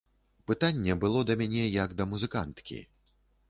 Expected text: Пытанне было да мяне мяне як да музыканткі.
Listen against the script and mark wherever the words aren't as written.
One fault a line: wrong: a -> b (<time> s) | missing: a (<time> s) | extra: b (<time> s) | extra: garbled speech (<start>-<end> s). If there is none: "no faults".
missing: мяне (1.7 s)